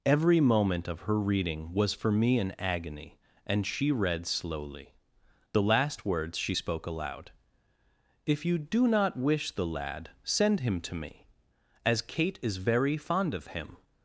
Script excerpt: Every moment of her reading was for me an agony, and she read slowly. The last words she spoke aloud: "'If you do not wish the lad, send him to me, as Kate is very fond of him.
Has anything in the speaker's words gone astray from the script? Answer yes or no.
no